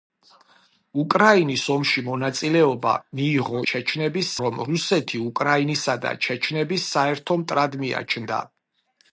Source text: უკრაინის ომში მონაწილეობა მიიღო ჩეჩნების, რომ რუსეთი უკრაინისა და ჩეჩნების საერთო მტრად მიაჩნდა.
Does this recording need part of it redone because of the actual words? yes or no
no